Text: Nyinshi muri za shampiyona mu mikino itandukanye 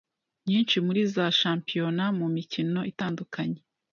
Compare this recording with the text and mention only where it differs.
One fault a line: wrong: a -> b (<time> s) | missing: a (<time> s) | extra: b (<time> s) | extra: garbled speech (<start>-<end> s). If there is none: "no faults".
no faults